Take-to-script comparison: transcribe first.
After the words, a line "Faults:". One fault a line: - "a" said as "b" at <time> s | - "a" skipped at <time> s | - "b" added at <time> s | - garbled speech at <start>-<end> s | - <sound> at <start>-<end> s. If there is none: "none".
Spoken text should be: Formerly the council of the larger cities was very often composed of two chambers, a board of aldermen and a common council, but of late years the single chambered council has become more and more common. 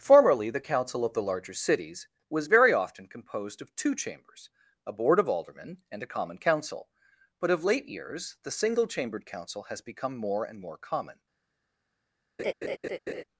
Formerly the council of the larger cities was very often composed of two chambers, a board of aldermen and a common council, but of late years the single chambered council has become more and more common.
Faults:
- laugh at 12.4-13.2 s